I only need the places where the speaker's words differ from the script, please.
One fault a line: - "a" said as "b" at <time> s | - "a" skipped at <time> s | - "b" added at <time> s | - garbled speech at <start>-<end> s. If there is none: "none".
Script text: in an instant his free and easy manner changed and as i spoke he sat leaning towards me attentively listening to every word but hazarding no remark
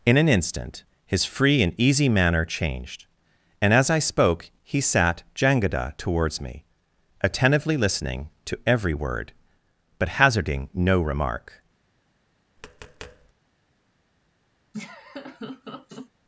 - "leaning" said as "jangada" at 5.3 s